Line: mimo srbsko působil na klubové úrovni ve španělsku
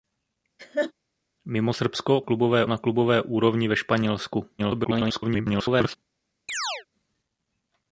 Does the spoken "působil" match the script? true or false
false